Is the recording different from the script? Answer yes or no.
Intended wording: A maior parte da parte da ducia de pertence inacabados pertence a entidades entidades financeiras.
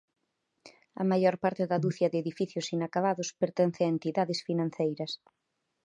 yes